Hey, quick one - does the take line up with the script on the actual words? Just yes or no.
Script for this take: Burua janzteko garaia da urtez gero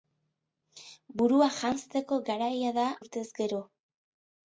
yes